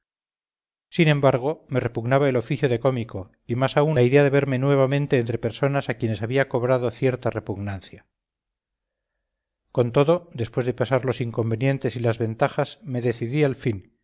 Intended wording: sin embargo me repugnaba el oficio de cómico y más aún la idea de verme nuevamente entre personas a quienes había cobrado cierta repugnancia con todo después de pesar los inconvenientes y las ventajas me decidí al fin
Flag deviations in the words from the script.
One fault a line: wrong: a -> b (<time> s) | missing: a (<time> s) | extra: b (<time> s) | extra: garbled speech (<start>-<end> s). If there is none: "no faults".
no faults